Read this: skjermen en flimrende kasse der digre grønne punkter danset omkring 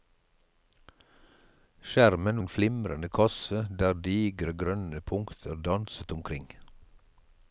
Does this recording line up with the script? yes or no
yes